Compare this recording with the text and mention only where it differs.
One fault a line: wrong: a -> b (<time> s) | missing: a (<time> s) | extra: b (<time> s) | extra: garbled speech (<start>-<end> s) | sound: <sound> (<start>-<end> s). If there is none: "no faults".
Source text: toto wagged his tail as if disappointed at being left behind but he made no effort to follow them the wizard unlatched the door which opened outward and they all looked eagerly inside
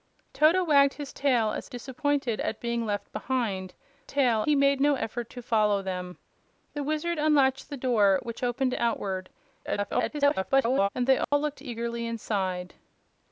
missing: if (1.7 s)
wrong: but -> tail (4.1 s)
extra: garbled speech (9.6-10.9 s)
sound: dropout (11.2-11.3 s)